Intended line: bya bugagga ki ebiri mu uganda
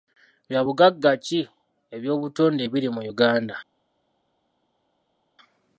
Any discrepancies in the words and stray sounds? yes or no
yes